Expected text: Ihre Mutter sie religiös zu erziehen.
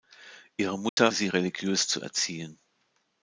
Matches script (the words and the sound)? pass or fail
fail